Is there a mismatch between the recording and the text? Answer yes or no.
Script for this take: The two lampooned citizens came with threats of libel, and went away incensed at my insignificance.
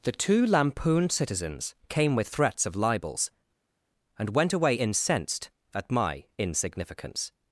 yes